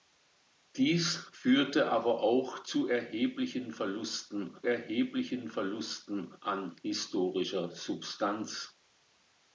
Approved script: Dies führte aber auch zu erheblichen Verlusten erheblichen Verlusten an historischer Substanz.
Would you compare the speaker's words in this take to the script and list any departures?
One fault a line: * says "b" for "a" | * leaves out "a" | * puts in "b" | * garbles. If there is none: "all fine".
all fine